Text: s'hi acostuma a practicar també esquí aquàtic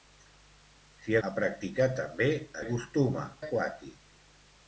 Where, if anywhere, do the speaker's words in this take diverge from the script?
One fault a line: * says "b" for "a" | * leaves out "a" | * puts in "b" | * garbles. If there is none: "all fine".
* leaves out "acostuma"
* says "acostuma" for "esquí"